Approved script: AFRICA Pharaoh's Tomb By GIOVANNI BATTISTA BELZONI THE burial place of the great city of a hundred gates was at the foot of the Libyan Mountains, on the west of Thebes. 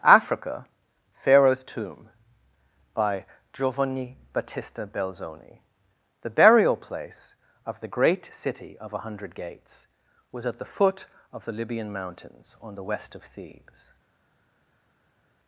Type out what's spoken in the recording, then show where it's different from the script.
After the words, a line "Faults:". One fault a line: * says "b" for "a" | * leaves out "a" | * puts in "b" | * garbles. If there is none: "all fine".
AFRICA Pharaoh's Tomb By GIOVANNI BATTISTA BELZONI THE burial place of the great city of a hundred gates was at the foot of the Libyan Mountains, on the west of Thebes.
Faults:
all fine